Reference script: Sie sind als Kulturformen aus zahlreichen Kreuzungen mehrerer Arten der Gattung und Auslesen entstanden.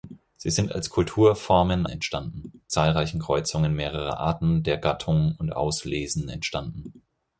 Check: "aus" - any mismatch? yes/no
yes